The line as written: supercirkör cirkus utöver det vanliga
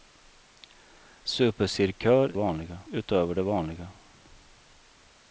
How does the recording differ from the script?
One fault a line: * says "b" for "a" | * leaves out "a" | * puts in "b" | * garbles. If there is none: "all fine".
* says "vanliga" for "cirkus"